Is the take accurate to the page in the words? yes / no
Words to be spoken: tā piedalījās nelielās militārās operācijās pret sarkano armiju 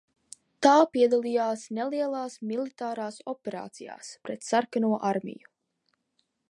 yes